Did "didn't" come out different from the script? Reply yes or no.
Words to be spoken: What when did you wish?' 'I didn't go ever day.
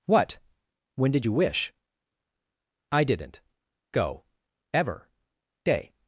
no